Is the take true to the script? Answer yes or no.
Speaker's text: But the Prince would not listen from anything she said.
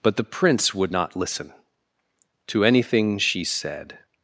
no